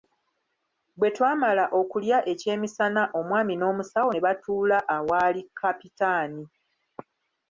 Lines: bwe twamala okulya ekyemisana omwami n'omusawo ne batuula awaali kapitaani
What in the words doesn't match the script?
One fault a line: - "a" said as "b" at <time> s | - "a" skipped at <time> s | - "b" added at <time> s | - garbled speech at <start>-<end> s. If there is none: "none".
none